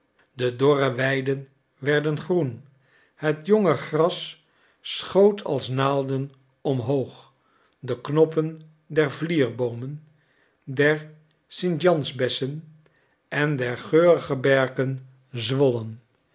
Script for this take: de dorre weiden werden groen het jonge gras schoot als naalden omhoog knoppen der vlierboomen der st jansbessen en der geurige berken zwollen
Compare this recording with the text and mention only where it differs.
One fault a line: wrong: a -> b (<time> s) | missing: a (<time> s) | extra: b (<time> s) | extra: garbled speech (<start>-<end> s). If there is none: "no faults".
extra: de (7.8 s)